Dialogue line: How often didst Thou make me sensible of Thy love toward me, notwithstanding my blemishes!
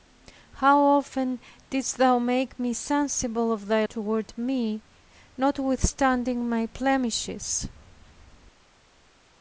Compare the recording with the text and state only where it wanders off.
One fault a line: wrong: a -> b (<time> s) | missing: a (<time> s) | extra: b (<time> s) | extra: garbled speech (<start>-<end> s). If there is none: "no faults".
missing: love (3.9 s)